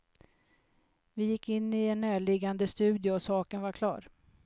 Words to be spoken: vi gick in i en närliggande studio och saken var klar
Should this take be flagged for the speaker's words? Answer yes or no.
no